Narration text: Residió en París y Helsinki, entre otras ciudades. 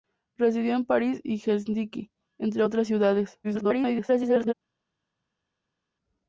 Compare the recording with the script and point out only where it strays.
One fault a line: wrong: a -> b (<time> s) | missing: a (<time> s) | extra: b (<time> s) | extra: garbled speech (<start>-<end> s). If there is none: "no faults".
extra: garbled speech (3.4-4.5 s)